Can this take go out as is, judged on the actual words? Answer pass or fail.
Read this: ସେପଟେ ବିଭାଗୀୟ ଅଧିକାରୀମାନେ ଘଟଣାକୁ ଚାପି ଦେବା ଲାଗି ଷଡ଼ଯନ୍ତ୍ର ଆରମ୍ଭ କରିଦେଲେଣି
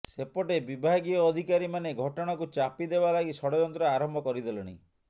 pass